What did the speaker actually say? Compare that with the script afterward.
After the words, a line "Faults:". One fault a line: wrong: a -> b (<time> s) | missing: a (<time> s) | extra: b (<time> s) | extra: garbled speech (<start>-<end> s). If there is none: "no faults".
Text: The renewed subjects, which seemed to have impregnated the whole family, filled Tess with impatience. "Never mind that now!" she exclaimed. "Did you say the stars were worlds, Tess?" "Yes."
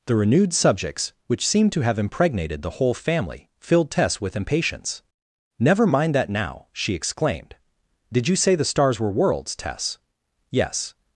The renewed subjects, which seemed to have impregnated the whole family, filled Tess with impatience. "Never mind that now!" she exclaimed. "Did you say the stars were worlds, Tess?" "Yes."
Faults:
no faults